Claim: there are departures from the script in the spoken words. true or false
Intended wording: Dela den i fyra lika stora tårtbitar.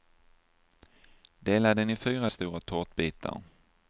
true